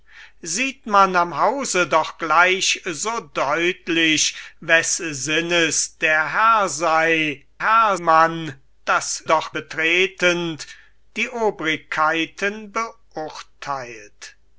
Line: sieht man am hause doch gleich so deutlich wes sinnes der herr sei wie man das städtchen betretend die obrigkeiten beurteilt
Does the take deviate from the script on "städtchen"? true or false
true